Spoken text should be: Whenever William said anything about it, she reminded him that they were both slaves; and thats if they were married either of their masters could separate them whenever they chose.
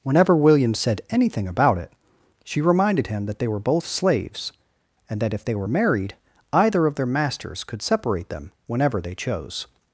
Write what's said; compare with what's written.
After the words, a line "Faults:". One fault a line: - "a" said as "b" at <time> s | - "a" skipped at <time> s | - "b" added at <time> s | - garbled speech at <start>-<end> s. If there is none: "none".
Whenever William said anything about it, she reminded him that they were both slaves; and that if they were married either of their masters could separate them whenever they chose.
Faults:
- "thats" said as "that" at 5.2 s